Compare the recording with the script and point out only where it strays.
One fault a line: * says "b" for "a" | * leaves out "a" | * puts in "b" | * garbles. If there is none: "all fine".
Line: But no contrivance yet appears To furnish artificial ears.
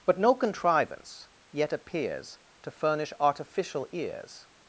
all fine